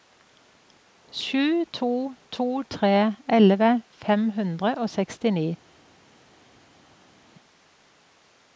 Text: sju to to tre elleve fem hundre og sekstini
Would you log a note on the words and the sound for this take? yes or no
no